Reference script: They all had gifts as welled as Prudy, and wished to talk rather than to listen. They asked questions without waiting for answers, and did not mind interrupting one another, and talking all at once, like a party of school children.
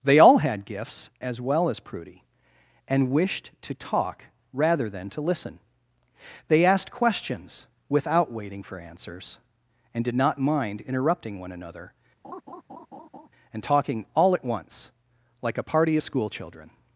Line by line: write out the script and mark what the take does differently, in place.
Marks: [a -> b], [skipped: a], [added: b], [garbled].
They all had gifts as [welled -> well] as Prudy, and wished to talk rather than to listen. They asked questions without waiting for answers, and did not mind interrupting one another, and talking all at once, like a party of school children.